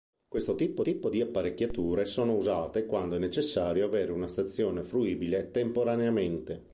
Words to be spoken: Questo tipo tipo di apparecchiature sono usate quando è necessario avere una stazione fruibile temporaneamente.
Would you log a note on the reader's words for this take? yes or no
no